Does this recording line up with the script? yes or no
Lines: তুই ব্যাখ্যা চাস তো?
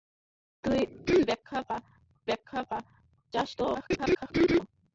no